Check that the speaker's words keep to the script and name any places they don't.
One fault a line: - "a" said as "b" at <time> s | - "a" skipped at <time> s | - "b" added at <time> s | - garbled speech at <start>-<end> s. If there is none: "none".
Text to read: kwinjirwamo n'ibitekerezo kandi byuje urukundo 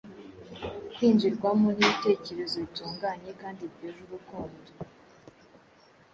- "bitunganye" added at 2.6 s